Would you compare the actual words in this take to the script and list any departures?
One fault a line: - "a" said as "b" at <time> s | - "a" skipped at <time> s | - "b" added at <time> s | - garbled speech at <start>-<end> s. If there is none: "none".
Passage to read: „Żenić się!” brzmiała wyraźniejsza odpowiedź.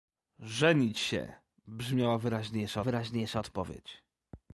- "wyraźniejsza" added at 2.8 s